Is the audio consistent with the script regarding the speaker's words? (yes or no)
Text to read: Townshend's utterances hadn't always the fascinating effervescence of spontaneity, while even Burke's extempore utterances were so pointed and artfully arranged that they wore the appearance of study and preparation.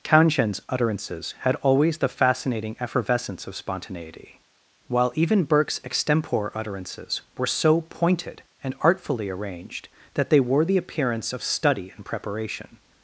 no